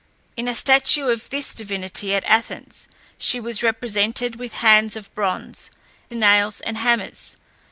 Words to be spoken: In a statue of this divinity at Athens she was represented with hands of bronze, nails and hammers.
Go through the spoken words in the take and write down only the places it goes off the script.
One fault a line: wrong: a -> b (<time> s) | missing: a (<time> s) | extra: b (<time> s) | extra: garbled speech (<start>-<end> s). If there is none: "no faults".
no faults